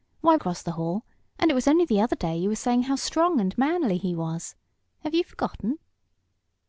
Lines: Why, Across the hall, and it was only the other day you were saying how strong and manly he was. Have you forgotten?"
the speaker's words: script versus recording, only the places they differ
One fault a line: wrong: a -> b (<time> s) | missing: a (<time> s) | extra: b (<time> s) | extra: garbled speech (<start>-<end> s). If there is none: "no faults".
no faults